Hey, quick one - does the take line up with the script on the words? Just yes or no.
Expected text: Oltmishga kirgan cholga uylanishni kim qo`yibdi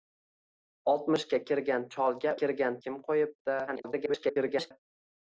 no